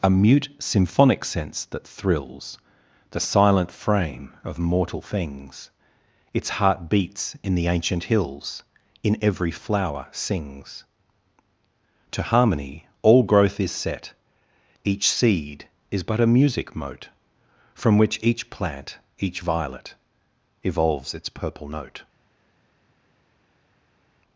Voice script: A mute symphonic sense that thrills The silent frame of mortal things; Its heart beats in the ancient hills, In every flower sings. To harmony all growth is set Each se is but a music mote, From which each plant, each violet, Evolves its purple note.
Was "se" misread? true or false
true